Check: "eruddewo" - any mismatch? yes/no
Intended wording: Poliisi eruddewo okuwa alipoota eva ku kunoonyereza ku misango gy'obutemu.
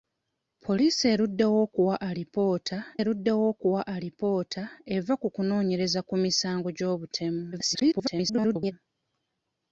no